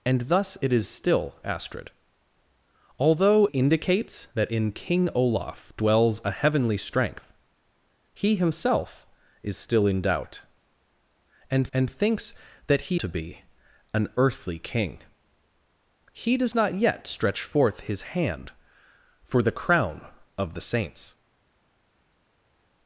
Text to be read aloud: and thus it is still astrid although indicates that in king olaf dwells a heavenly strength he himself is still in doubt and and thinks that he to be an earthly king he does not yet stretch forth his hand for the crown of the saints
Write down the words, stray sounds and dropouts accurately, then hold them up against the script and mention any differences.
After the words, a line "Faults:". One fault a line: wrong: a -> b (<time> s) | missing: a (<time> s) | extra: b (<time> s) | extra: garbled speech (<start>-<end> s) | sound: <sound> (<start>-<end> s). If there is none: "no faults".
and thus it is still astrid although indicates that in king olaf dwells a heavenly strength he himself is still in doubt and and thinks that he to be an earthly king he does not yet stretch forth his hand for the crown of the saints
Faults:
no faults